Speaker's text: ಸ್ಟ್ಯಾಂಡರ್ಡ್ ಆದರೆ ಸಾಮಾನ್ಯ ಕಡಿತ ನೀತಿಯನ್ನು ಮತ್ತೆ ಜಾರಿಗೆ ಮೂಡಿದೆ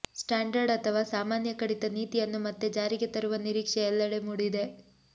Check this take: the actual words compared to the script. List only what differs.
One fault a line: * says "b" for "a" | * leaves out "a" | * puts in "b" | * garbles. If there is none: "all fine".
* says "ಅಥವಾ" for "ಆದರೆ"
* puts in "ತರುವ ನಿರೀಕ್ಷೆ ಎಲ್ಲೆಡೆ"